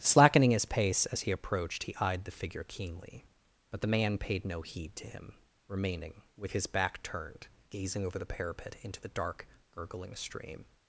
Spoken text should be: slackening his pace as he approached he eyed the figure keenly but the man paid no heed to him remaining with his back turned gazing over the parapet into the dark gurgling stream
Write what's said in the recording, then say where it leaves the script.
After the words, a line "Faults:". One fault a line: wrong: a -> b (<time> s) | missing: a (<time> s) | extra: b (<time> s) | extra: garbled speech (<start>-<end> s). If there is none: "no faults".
slackening his pace as he approached he eyed the figure keenly but the man paid no heed to him remaining with his back turned gazing over the parapet into the dark gurgling stream
Faults:
no faults